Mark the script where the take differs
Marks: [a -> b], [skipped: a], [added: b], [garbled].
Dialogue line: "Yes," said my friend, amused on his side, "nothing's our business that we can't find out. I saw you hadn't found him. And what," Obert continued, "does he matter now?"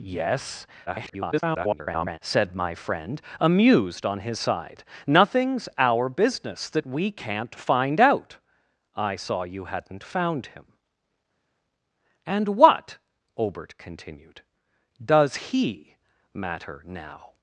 "Yes," [garbled] said my friend, amused on his side, "nothing's our business that we can't find out. I saw you hadn't found him. And what," Obert continued, "does he matter now?"